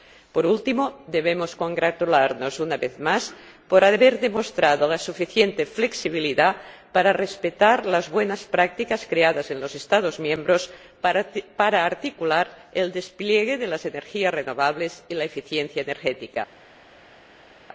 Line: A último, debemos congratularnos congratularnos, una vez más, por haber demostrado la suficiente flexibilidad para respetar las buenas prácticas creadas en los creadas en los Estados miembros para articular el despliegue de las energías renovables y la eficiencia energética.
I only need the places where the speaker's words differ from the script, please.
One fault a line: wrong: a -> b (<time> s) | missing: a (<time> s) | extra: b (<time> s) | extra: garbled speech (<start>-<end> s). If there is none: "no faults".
wrong: A -> Por (0.3 s)
missing: congratularnos (2.6 s)
missing: creadas en los (9.7 s)